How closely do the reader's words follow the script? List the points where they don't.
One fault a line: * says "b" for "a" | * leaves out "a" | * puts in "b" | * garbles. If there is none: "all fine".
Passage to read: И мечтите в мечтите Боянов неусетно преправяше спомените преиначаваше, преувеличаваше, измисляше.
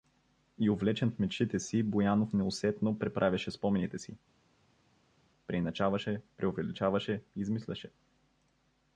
* says "увлечен" for "мечтите"
* puts in "си"
* puts in "си"